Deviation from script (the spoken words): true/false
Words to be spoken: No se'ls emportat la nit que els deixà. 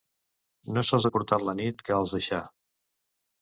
false